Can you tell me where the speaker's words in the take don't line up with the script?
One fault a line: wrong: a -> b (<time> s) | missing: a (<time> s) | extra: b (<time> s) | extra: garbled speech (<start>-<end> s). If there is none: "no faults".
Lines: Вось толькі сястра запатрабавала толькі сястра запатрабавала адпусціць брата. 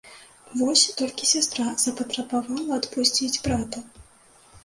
missing: толькі сястра запатрабавала (2.8 s)